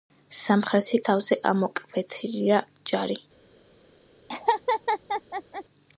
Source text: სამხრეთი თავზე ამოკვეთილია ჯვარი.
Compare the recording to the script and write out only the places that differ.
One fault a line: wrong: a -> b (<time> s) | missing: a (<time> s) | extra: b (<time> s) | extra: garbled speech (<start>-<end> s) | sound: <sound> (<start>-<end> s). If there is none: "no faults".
sound: laugh (4.3-5.6 s)